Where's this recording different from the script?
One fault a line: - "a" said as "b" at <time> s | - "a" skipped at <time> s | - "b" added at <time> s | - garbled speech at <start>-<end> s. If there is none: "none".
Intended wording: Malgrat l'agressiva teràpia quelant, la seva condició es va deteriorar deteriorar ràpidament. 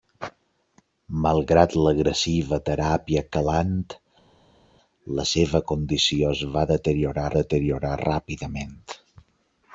none